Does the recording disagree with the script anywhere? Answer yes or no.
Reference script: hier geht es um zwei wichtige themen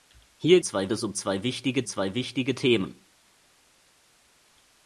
yes